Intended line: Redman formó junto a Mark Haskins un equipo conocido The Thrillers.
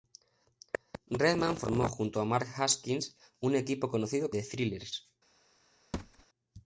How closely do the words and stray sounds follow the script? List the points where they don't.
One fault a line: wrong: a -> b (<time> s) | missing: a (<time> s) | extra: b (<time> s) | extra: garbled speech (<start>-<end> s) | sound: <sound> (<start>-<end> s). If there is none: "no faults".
sound: thud (5.9-6.3 s)